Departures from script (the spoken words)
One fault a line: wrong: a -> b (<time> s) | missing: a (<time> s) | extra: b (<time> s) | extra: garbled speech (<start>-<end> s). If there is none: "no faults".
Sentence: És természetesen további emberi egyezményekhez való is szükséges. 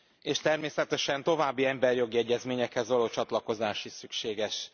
extra: jogi (2.0 s)
extra: csatlakozás (3.1 s)